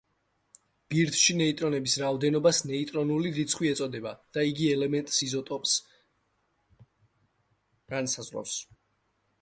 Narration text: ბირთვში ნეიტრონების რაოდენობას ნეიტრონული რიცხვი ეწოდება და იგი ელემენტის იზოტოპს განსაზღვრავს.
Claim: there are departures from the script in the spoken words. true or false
false